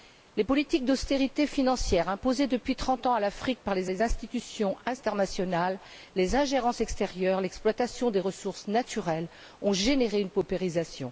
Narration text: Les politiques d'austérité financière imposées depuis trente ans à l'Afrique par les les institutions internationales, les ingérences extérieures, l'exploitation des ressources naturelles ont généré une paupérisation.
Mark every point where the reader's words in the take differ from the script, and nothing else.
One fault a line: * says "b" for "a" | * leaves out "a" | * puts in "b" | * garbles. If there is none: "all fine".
all fine